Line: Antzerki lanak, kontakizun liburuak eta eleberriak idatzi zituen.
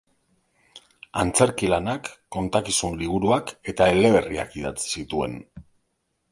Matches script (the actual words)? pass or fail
pass